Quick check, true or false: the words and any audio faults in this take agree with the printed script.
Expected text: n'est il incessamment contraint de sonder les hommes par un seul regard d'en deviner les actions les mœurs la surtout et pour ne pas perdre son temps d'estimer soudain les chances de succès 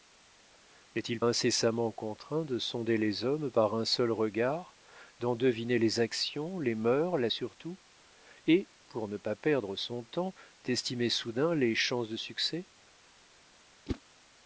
false